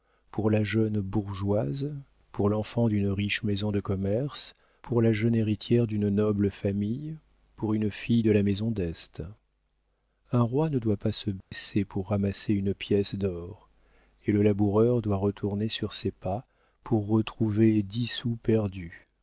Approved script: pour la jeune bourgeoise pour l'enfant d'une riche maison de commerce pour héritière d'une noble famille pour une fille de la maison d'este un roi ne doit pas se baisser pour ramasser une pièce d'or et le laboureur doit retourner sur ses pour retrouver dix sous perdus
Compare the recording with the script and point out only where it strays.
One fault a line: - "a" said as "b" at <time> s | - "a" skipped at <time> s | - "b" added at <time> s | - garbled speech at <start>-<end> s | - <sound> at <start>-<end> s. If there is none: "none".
- "la jeune" added at 5.0 s
- dropout at 11.4-11.5 s
- "pas" added at 16.1 s